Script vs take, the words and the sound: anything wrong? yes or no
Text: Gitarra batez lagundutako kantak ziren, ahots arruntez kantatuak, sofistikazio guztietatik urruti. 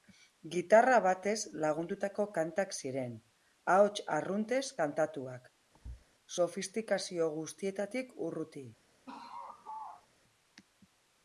yes